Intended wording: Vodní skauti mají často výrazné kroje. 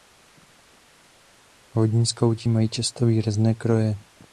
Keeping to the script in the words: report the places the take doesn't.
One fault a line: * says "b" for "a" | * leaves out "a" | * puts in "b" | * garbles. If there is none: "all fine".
all fine